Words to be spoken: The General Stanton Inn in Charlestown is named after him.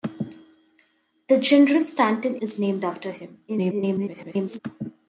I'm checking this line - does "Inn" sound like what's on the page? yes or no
no